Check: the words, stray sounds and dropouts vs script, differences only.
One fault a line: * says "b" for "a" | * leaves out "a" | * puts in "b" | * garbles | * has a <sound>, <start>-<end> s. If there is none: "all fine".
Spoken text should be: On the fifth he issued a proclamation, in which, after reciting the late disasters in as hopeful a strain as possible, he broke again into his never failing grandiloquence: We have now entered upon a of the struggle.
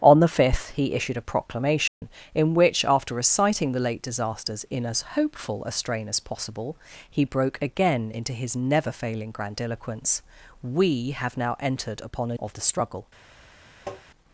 * has a dropout, 1.9-2.0 s
* has a tap, 13.9-14.0 s